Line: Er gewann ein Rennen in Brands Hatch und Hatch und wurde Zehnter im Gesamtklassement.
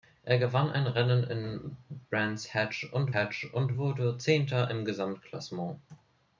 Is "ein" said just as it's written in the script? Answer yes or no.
yes